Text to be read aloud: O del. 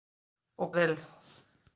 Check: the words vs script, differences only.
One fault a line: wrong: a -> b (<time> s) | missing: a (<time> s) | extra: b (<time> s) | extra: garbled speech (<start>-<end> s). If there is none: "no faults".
no faults